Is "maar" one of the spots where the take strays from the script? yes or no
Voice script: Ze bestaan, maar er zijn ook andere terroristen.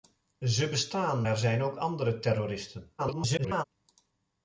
yes